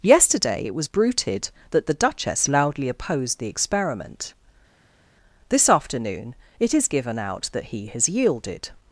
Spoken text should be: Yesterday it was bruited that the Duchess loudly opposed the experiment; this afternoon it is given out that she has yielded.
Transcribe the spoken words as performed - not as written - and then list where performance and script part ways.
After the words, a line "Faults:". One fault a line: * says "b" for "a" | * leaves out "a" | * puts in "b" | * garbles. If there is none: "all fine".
Yesterday it was bruited that the Duchess loudly opposed the experiment; this afternoon it is given out that he has yielded.
Faults:
* says "he" for "she"